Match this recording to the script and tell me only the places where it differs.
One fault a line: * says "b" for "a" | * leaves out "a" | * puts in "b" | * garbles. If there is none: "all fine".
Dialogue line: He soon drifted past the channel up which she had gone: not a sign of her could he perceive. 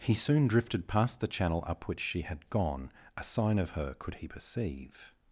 * leaves out "not"